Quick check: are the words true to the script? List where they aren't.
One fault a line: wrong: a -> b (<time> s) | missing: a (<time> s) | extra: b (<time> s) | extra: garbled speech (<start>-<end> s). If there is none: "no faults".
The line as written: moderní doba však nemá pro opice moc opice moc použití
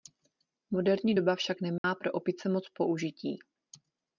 missing: opice moc (2.7 s)